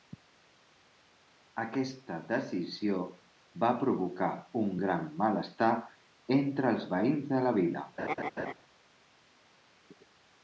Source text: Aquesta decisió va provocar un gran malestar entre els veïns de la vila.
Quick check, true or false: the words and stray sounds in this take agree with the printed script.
false